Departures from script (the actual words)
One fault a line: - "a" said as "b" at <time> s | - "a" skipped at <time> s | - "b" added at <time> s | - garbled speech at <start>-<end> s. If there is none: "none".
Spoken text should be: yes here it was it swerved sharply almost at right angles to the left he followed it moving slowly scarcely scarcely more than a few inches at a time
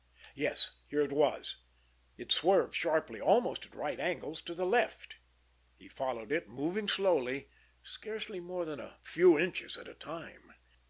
- "scarcely" skipped at 8.4 s